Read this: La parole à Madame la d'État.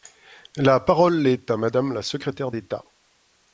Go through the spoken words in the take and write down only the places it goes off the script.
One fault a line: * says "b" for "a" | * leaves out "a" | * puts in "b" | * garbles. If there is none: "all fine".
* puts in "est"
* puts in "secrétaire"